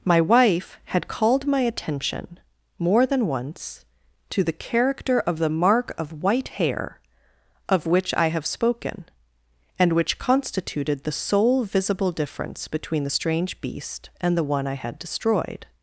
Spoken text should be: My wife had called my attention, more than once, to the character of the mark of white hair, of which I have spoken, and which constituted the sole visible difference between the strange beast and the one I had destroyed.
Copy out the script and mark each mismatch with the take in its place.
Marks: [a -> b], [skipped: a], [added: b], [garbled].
My wife had called my attention, more than once, to the character of the mark of white hair, of which I have spoken, and which constituted the sole visible difference between the strange beast and the one I had destroyed.